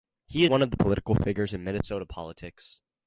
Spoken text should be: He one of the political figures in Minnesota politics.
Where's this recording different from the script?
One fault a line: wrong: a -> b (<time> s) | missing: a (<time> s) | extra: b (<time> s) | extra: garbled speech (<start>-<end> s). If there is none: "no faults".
no faults